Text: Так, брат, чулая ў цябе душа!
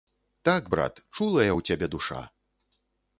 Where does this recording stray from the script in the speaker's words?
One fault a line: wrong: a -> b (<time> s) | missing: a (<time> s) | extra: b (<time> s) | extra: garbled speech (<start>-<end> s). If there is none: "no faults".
no faults